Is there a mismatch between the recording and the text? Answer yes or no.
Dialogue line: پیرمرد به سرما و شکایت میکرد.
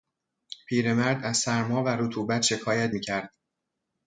yes